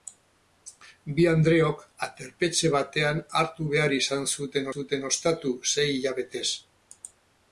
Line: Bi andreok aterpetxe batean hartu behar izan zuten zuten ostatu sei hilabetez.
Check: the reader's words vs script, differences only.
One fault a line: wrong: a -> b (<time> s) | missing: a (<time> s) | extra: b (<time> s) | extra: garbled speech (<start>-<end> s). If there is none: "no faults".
no faults